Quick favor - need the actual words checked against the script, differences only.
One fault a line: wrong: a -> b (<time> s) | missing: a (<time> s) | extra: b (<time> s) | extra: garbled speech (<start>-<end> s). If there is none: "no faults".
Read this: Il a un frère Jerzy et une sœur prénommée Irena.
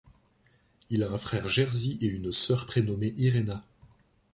no faults